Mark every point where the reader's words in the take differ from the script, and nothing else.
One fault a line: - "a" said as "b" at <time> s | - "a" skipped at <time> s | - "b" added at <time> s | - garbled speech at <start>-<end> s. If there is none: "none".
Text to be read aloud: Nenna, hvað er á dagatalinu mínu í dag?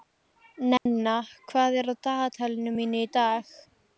none